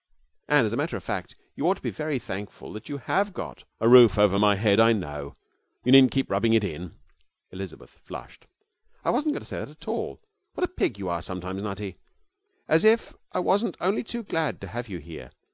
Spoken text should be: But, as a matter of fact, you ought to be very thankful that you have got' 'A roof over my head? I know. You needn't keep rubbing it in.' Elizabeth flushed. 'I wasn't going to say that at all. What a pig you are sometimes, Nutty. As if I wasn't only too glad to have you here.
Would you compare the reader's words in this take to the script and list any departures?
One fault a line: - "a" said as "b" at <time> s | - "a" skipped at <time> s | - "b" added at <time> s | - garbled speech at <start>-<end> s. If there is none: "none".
- "But" said as "And" at 0.5 s